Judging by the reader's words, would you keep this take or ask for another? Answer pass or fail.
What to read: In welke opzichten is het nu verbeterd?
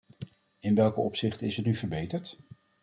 pass